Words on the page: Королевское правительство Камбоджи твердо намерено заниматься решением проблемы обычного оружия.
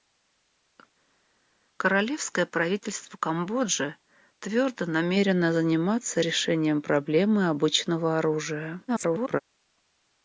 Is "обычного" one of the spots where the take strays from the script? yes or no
no